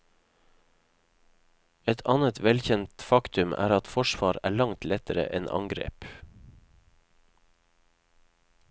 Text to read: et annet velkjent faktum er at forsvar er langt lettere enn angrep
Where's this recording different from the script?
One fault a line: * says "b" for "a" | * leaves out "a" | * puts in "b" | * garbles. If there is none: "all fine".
all fine